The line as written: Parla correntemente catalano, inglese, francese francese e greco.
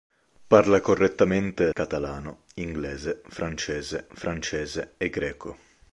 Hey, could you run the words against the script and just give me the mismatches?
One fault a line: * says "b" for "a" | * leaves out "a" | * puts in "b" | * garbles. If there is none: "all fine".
all fine